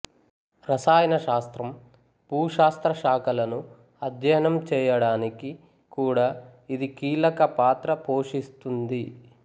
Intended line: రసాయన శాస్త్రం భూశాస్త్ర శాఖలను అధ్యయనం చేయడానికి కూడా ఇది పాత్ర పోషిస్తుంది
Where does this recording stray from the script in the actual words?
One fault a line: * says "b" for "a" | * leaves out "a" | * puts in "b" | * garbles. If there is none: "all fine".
* puts in "కీలక"